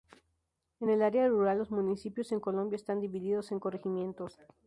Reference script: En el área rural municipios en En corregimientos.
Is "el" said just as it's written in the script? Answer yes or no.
yes